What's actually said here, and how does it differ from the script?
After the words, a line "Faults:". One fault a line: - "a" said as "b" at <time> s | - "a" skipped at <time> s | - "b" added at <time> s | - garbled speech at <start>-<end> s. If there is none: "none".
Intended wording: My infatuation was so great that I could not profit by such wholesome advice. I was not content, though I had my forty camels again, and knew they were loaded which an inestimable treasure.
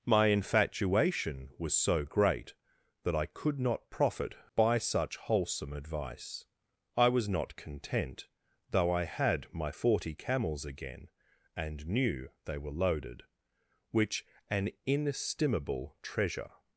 My infatuation was so great that I could not profit by such wholesome advice. I was not content, though I had my forty camels again, and knew they were loaded which an inestimable treasure.
Faults:
none